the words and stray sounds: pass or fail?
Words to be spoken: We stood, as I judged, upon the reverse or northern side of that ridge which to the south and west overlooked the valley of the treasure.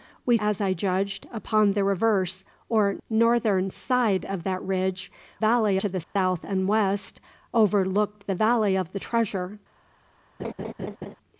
fail